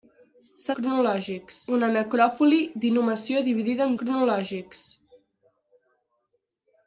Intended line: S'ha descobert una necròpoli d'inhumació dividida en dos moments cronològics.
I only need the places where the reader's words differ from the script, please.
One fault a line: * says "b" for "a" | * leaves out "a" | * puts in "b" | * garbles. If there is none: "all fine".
* says "cronològics" for "descobert"
* leaves out "dos moments"